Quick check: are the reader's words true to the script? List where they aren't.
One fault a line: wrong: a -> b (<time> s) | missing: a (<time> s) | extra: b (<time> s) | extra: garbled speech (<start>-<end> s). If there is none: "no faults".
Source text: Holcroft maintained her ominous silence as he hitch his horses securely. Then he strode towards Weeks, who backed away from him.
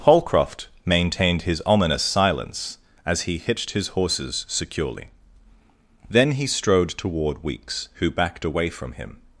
wrong: her -> his (1.4 s)
wrong: hitch -> hitched (3.4 s)
wrong: towards -> toward (6.9 s)